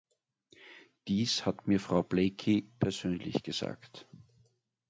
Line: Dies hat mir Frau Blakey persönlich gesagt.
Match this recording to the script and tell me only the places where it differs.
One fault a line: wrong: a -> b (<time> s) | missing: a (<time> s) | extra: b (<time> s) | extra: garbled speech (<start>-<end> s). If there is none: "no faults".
no faults